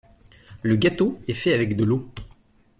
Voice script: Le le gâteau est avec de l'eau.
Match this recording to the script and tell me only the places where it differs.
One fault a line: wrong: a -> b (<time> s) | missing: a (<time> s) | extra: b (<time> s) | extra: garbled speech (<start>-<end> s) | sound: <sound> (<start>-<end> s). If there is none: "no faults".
missing: le (0.8 s)
extra: fait (1.4 s)